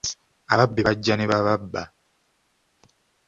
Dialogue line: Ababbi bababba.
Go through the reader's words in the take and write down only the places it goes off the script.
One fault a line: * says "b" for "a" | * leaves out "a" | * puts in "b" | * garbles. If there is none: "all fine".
* puts in "bajja ne"